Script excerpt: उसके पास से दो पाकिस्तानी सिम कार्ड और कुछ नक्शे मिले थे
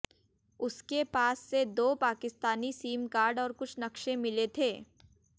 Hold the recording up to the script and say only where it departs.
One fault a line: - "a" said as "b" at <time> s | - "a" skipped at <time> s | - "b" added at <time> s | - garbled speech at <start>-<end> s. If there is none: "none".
none